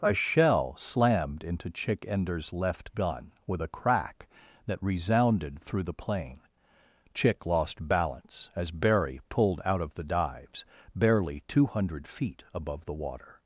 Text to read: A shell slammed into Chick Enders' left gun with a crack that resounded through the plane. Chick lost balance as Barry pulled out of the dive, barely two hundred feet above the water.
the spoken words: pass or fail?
fail